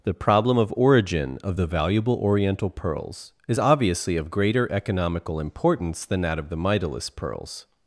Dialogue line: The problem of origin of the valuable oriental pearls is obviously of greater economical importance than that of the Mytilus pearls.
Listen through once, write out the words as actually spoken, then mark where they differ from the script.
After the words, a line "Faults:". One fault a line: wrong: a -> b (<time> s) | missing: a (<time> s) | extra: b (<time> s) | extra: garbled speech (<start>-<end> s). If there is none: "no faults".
The problem of origin of the valuable oriental pearls is obviously of greater economical importance than that of the Mytilus pearls.
Faults:
no faults